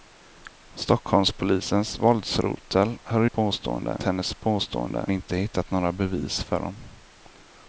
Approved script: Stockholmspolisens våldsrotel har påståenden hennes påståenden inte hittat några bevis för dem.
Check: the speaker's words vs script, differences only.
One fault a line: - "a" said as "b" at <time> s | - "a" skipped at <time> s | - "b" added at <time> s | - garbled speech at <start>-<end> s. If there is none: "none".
none